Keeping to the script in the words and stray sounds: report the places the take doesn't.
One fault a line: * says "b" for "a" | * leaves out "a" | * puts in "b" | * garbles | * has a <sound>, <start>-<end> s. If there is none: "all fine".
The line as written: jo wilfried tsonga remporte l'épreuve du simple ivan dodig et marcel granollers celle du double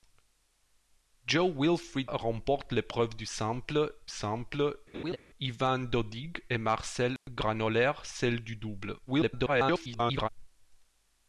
* leaves out "tsonga"
* puts in "simple"
* has a laugh, 4.9-5.2 s
* has a dropout, 7.2-7.3 s
* garbles